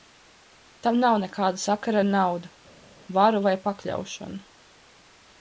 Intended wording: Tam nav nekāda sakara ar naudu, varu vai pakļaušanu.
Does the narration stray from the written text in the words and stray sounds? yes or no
no